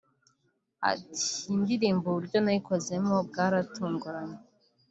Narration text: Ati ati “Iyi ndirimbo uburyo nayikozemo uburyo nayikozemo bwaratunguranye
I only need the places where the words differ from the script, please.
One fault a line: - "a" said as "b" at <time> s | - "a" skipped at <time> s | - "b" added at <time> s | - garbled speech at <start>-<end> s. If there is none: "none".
- "ati" skipped at 1.2 s
- "uburyo nayikozemo" skipped at 3.1 s